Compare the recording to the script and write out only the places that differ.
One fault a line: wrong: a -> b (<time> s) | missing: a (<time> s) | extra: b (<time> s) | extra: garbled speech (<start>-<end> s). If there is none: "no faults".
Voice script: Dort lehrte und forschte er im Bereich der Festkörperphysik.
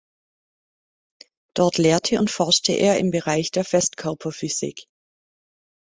no faults